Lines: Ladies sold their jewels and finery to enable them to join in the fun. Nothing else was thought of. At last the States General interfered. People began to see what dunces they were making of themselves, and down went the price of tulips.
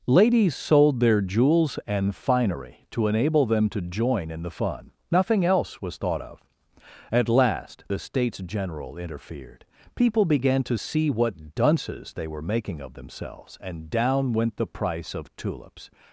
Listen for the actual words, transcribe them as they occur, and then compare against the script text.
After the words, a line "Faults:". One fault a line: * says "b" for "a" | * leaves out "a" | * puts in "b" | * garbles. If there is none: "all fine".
Ladies sold their jewels and finery to enable them to join in the fun. Nothing else was thought of. At last the States General interfered. People began to see what dunces they were making of themselves, and down went the price of tulips.
Faults:
all fine